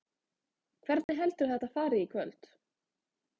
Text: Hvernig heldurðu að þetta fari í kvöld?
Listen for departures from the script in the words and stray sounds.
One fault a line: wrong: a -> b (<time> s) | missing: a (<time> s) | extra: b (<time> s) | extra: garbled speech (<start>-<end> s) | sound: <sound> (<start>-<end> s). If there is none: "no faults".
sound: dropout (1.0-1.1 s)